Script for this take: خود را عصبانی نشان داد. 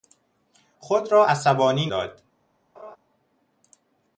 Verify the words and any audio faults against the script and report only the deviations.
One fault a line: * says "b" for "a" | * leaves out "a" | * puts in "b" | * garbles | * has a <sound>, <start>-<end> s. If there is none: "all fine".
* leaves out "نشان"
* has a laugh, 2.7-3.0 s